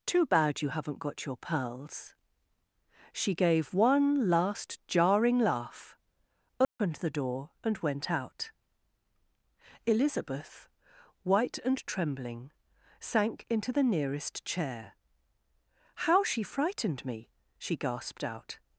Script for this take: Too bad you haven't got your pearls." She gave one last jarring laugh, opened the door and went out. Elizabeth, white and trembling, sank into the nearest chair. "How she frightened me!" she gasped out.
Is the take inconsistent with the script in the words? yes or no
no